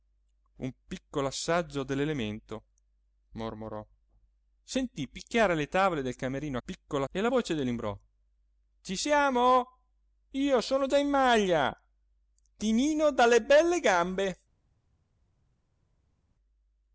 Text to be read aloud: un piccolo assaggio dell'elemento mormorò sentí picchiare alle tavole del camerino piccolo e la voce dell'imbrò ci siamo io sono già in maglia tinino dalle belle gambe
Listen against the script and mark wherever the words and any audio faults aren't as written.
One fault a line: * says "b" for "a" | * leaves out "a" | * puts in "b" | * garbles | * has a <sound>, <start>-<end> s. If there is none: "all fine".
all fine